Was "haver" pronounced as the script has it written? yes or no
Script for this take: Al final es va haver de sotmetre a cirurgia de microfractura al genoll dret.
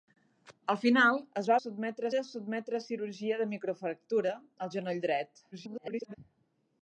no